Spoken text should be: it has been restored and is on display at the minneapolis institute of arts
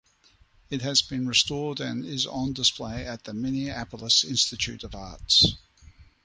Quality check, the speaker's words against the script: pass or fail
pass